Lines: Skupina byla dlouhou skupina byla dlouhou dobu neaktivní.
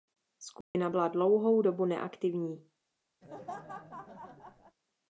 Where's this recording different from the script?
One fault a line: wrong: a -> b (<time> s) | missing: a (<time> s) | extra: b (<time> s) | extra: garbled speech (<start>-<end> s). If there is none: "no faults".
missing: skupina byla dlouhou (1.6 s)